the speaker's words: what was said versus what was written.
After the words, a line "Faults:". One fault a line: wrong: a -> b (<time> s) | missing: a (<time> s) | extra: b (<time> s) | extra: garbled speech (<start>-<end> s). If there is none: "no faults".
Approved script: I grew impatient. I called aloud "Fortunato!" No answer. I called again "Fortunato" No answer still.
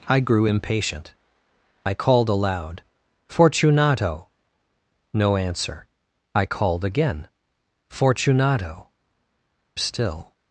I grew impatient. I called aloud "Fortunato!" No answer. I called again "Fortunato" Still.
Faults:
missing: No answer (8.9 s)